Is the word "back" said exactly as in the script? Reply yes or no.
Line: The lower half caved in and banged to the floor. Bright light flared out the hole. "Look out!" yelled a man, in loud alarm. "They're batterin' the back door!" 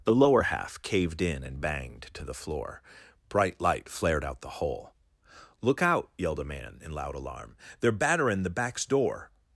no